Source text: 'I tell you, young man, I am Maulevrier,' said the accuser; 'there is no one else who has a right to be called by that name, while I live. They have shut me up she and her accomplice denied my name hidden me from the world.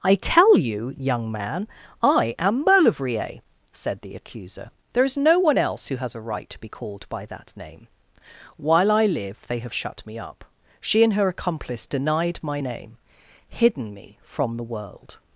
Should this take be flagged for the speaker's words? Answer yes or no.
no